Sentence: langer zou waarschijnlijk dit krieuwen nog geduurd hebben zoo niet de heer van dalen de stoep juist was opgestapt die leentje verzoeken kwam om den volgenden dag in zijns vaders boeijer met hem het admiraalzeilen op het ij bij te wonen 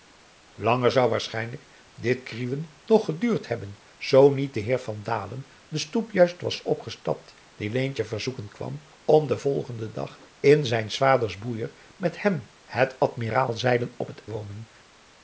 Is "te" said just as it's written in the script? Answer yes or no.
no